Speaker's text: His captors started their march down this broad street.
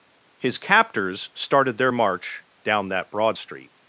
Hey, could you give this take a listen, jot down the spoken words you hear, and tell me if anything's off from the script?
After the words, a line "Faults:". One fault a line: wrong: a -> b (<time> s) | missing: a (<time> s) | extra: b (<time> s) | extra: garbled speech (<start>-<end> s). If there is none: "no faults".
His captors started their march down that broad street.
Faults:
wrong: this -> that (2.9 s)